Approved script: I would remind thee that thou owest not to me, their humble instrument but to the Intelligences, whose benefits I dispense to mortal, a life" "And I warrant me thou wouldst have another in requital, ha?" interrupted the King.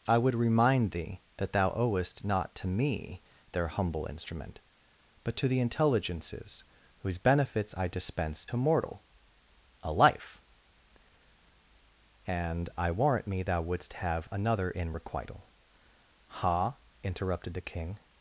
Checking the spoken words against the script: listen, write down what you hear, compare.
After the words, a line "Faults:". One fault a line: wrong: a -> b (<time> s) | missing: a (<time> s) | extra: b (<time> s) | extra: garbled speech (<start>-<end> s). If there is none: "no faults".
I would remind thee that thou owest not to me, their humble instrument but to the Intelligences, whose benefits I dispense to mortal, a life" "And I warrant me thou wouldst have another in requital, ha?" interrupted the King.
Faults:
no faults